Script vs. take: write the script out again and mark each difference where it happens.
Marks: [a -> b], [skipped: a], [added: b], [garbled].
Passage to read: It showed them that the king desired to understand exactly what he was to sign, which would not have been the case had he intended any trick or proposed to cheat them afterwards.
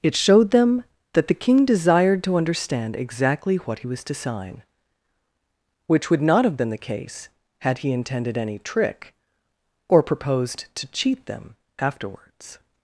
It showed them that the king desired to understand exactly what he was to sign, which would not have been the case had he intended any trick or proposed to cheat them afterwards.